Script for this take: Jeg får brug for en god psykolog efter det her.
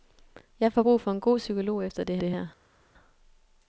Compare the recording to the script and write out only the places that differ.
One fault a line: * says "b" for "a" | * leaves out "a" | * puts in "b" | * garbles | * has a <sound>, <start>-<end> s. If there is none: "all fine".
* puts in "det"